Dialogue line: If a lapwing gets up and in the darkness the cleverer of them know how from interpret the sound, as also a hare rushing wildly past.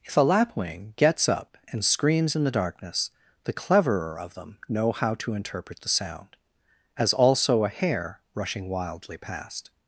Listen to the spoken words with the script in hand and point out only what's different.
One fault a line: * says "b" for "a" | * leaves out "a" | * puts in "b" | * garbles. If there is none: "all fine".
* puts in "screams"
* says "to" for "from"